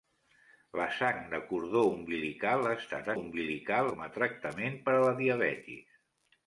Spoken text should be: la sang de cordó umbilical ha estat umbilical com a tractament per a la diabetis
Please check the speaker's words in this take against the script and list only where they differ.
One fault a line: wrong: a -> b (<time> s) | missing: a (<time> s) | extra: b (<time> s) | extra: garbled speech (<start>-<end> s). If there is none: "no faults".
no faults